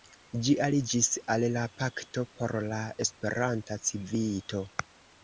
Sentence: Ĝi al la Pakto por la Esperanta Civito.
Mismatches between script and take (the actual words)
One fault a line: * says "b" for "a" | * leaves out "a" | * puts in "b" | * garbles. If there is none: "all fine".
* puts in "aliĝis"